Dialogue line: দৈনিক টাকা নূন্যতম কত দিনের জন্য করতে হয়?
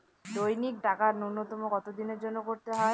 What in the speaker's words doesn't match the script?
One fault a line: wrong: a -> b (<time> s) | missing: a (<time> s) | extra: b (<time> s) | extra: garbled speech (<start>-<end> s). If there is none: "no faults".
no faults